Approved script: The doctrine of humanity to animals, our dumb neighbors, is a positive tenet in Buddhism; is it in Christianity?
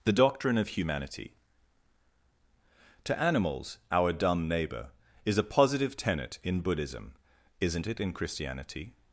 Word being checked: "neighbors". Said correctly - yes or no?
no